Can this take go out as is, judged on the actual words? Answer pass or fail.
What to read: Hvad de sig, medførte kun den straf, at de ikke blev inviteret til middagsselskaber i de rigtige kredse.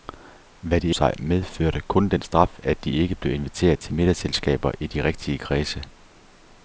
pass